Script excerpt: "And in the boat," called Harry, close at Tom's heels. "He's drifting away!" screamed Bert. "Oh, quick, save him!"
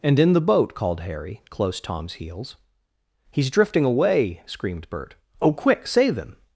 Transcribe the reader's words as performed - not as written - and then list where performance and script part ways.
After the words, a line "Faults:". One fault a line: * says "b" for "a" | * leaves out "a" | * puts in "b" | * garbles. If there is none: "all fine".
"And in the boat," called Harry, close Tom's heels. "He's drifting away!" screamed Bert. "Oh, quick, save him!"
Faults:
* leaves out "at"